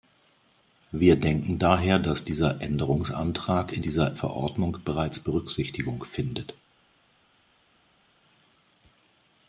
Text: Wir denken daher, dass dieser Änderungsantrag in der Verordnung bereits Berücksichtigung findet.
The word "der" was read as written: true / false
false